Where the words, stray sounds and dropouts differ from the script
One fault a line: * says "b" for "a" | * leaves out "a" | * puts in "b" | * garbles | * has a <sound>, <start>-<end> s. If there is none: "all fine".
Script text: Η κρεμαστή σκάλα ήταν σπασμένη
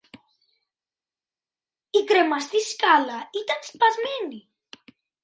all fine